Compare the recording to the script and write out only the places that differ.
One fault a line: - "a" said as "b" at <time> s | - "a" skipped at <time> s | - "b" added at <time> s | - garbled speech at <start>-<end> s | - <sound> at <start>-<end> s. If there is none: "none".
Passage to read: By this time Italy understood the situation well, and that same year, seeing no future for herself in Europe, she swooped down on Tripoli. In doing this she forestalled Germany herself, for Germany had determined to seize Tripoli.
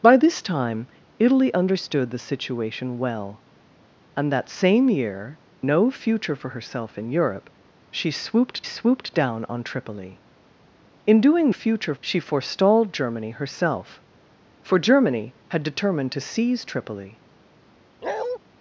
- "seeing" skipped at 5.4 s
- "swooped" added at 8.6 s
- "this" said as "future" at 11.5 s
- bark at 18.0-18.4 s